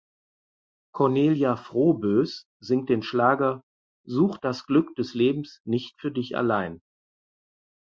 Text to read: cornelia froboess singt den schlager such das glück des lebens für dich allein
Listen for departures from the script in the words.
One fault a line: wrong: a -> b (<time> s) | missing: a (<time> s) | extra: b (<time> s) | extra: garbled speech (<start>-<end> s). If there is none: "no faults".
extra: nicht (5.6 s)